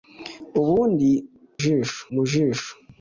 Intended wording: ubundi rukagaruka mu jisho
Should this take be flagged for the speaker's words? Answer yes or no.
yes